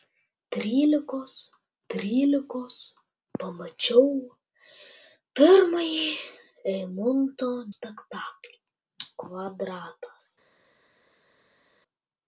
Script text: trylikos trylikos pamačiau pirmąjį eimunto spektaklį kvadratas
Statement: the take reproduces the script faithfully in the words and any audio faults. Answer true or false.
true